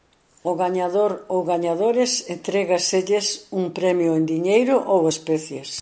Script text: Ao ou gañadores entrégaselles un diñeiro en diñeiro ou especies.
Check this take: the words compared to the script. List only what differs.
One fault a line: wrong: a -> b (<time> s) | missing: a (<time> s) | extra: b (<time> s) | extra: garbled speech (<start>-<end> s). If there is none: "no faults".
extra: gañador (0.6 s)
wrong: diñeiro -> premio (3.8 s)